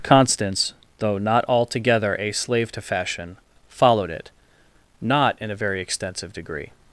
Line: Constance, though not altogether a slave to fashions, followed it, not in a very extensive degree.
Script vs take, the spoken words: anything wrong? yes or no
yes